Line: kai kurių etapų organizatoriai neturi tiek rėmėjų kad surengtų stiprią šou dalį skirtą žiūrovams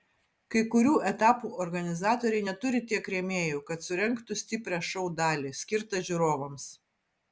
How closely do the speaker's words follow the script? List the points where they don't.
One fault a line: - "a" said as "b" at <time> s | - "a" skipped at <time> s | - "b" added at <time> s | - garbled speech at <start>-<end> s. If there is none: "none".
none